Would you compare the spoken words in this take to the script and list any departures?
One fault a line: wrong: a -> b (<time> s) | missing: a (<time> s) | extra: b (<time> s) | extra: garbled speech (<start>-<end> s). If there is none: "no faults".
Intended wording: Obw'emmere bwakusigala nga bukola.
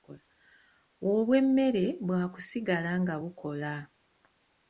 no faults